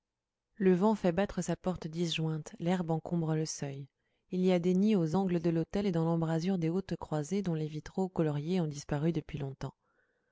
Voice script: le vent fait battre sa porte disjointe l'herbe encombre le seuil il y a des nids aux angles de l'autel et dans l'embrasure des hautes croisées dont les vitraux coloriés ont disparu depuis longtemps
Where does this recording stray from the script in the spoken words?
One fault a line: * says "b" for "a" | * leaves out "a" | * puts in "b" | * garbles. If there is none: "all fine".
all fine